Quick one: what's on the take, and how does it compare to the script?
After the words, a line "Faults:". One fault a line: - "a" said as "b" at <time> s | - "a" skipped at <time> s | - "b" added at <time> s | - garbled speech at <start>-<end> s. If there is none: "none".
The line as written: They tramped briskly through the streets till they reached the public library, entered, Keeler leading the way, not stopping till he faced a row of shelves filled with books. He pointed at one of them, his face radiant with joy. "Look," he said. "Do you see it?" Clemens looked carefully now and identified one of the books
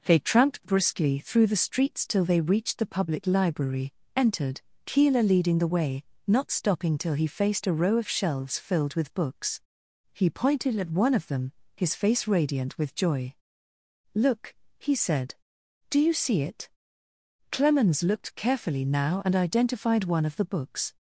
They tramped briskly through the streets till they reached the public library, entered, Keeler leading the way, not stopping till he faced a row of shelves filled with books. He pointed at one of them, his face radiant with joy. "Look," he said. "Do you see it?" Clemens looked carefully now and identified one of the books
Faults:
none